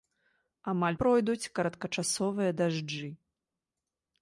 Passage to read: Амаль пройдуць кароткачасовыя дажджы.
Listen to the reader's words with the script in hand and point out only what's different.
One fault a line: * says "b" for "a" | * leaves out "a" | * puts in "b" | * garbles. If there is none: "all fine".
all fine